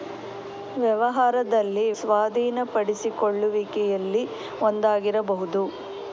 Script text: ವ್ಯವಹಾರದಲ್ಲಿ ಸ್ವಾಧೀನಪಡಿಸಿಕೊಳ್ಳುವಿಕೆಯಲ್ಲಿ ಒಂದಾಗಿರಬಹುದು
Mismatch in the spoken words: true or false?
false